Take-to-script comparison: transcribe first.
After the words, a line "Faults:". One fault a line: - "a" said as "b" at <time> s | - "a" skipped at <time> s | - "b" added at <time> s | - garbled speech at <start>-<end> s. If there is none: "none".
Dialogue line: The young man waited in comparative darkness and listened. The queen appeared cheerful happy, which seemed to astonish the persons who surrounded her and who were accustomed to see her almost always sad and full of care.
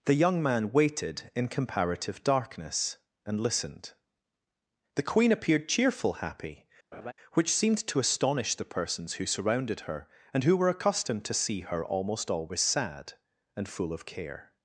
The young man waited in comparative darkness and listened. The queen appeared cheerful happy, which seemed to astonish the persons who surrounded her and who were accustomed to see her almost always sad and full of care.
Faults:
none